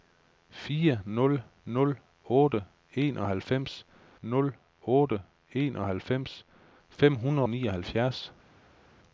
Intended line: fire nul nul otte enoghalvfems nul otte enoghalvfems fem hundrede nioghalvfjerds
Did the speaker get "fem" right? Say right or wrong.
right